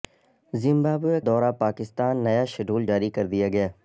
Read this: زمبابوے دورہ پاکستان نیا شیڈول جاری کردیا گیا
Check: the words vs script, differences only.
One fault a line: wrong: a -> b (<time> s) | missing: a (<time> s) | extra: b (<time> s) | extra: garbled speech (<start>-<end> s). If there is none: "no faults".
no faults